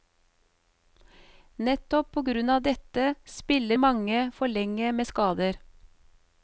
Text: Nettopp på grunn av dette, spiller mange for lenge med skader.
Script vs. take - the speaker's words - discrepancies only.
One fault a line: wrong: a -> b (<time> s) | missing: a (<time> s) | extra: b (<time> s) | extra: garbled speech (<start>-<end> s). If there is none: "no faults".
no faults